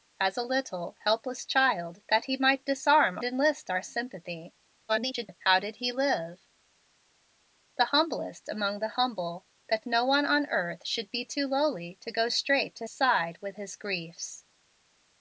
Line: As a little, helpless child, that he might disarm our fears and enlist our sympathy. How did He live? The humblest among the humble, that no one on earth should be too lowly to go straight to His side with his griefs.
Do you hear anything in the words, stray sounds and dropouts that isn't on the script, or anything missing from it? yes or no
yes